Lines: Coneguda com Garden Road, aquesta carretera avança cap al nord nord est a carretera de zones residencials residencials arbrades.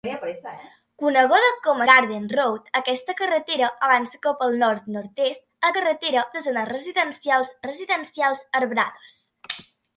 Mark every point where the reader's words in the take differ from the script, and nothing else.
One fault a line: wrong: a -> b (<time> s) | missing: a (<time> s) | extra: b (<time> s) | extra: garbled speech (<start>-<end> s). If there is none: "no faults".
no faults